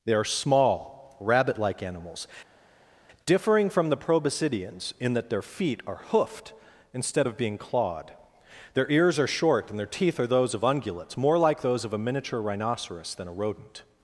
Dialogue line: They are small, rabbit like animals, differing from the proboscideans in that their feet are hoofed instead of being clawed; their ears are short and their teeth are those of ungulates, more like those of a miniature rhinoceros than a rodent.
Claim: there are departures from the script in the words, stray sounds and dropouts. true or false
false